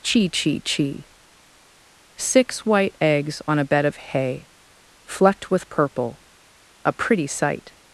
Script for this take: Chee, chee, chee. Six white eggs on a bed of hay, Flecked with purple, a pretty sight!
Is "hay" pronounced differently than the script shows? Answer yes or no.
no